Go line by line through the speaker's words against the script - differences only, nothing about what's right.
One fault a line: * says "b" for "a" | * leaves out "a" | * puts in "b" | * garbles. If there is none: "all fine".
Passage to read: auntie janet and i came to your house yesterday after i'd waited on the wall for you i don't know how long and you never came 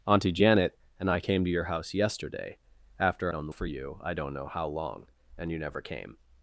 * leaves out "i'd waited"
* leaves out "wall"